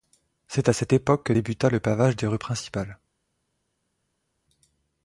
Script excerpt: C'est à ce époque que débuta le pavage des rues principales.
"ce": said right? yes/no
no